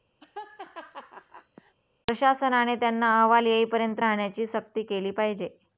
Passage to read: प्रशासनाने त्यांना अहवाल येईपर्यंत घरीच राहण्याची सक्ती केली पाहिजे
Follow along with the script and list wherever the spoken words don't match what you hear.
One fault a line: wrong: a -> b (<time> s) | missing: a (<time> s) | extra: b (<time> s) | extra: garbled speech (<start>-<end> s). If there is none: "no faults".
missing: घरीच (4.0 s)